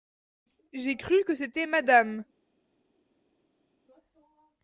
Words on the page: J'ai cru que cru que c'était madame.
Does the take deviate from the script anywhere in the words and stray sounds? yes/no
yes